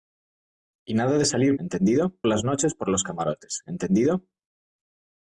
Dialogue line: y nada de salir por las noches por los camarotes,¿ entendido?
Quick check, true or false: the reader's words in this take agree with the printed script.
false